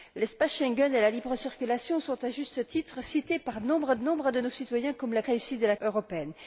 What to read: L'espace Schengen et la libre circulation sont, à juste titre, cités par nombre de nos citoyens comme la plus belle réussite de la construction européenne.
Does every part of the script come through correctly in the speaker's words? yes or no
no